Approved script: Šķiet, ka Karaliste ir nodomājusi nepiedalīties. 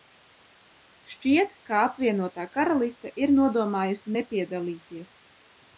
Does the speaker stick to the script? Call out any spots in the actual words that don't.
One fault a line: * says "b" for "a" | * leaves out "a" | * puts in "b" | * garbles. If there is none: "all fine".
* puts in "Apvienotā"